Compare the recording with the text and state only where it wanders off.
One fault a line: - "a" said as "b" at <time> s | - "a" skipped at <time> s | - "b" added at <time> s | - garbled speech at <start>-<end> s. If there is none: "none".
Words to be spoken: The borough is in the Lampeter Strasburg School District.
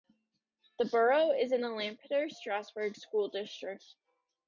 none